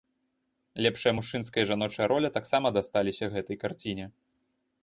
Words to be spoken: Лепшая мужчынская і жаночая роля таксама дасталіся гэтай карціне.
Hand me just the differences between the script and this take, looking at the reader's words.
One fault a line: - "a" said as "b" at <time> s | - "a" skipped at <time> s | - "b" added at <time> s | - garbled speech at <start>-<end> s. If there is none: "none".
none